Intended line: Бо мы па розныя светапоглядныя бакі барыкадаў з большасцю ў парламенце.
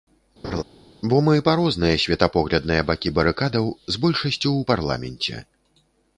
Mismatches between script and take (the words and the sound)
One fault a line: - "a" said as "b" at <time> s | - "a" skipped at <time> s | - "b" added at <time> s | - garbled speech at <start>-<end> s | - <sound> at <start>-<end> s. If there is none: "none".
- laugh at 0.4-0.6 s